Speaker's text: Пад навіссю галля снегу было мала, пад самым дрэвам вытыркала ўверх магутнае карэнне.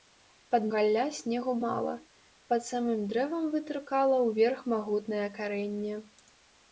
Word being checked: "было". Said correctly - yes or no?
no